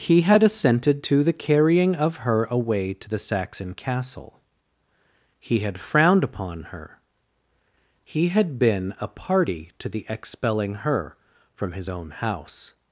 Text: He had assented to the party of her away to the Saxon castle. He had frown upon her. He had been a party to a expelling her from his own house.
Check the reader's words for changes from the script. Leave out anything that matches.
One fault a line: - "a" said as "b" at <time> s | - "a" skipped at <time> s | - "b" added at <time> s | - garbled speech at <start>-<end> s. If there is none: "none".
- "party" said as "carrying" at 1.4 s
- "frown" said as "frowned" at 5.8 s
- "a" said as "the" at 9.9 s